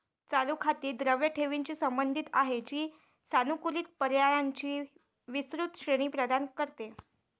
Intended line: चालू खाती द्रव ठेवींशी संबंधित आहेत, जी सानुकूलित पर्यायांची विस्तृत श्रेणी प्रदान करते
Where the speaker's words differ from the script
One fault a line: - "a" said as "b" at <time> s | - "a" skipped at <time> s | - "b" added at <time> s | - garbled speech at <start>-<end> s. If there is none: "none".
none